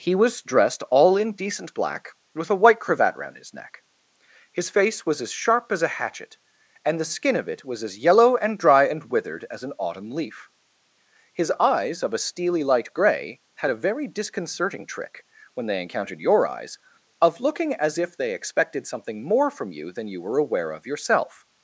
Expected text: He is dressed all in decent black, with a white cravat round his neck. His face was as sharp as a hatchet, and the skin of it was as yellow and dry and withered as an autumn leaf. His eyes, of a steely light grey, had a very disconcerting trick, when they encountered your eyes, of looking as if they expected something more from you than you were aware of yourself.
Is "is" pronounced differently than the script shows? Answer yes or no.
yes